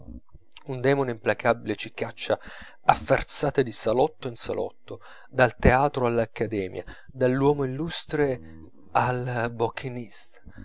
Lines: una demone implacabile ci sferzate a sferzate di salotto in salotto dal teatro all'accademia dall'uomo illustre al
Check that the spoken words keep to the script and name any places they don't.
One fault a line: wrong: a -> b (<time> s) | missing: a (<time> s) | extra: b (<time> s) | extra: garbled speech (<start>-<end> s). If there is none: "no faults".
wrong: una -> un (0.7 s)
wrong: sferzate -> caccia (1.9 s)